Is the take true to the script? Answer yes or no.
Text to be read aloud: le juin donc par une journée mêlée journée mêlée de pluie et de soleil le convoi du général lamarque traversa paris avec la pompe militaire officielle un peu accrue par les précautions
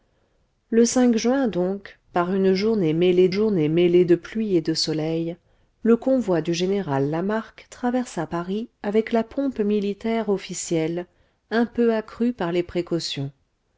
yes